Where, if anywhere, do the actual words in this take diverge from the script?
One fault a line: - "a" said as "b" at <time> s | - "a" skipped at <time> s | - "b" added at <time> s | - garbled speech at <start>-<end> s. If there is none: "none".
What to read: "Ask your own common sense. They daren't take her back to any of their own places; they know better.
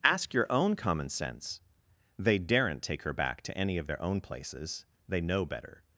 none